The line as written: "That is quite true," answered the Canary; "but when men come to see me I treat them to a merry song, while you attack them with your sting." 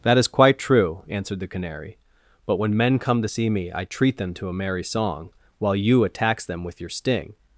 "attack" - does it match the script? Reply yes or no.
no